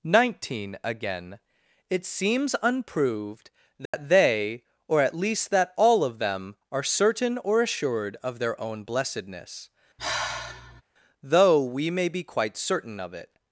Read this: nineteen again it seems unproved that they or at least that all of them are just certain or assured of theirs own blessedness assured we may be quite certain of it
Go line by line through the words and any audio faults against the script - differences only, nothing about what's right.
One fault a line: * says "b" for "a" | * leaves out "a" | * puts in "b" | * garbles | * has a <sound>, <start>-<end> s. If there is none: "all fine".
* has a dropout, 3.9-3.9 s
* leaves out "just"
* says "their" for "theirs"
* has a sigh, 10.0-10.8 s
* says "though" for "assured"